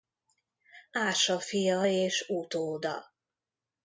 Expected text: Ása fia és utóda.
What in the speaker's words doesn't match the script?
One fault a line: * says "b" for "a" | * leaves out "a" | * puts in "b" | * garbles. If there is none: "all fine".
all fine